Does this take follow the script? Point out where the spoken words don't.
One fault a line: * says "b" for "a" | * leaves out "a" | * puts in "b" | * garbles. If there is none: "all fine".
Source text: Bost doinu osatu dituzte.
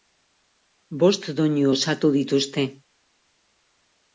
all fine